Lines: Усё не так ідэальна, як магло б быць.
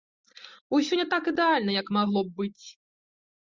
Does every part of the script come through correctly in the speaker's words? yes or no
yes